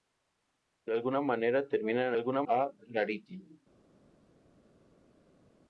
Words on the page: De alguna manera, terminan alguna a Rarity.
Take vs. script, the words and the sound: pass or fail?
pass